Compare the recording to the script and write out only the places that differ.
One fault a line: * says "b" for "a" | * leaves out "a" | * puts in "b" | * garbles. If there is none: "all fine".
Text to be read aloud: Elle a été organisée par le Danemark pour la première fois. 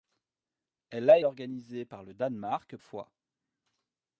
* leaves out "été"
* leaves out "pour la première"